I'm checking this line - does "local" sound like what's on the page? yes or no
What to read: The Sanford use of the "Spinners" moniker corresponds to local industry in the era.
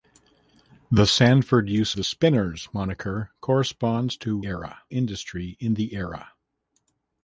no